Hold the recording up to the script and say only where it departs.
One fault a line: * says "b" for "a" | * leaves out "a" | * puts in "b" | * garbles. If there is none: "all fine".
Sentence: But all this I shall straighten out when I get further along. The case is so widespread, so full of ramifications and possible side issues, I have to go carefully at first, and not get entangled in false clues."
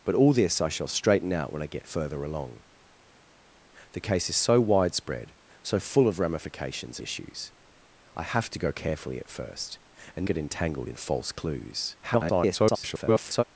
* leaves out "and possible side"
* leaves out "not"
* garbles